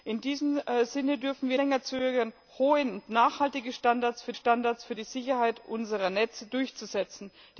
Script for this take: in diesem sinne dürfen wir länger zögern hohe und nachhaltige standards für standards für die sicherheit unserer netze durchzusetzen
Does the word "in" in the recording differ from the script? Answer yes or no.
no